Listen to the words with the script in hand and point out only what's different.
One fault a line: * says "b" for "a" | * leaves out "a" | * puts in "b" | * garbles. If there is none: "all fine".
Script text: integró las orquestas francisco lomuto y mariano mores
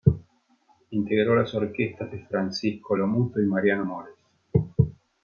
* puts in "de"